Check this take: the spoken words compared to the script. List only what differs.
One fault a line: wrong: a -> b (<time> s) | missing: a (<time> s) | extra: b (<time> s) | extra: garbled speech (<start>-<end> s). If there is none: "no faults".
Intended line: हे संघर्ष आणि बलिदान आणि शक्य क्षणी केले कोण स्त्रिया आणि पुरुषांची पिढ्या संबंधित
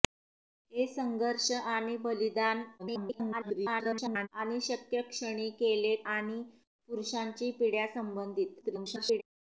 extra: garbled speech (2.8-4.3 s)
missing: कोण स्त्रिया (5.9 s)
extra: garbled speech (8.6-9.2 s)